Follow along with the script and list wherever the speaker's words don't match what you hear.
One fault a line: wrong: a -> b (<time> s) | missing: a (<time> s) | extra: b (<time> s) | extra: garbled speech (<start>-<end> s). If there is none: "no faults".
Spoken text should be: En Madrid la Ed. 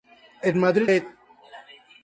missing: la (0.9 s)